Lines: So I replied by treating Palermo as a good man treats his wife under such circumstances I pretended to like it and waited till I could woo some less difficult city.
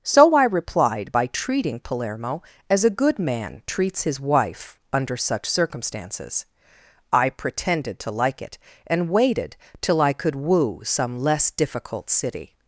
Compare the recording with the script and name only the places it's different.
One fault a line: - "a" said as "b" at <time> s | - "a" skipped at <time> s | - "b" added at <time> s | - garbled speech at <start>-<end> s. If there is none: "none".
none